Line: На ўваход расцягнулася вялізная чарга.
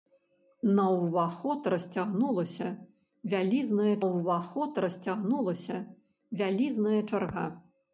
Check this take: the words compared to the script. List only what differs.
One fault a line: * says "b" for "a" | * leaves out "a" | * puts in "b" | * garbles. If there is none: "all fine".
* puts in "ўваход расцягнулася вялізная"